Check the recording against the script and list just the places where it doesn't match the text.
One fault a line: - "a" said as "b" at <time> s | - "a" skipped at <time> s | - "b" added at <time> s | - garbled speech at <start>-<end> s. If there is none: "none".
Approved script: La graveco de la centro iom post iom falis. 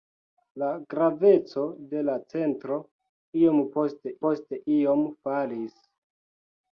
- "post" added at 4.2 s